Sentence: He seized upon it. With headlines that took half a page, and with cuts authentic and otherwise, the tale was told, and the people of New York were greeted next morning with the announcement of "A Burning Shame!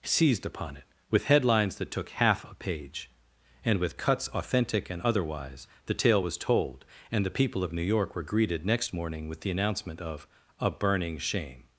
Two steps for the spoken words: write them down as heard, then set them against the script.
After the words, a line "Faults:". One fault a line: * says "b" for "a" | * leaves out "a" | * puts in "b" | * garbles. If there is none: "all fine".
seized upon it. With headlines that took half a page, and with cuts authentic and otherwise, the tale was told, and the people of New York were greeted next morning with the announcement of "A Burning Shame!
Faults:
* leaves out "He"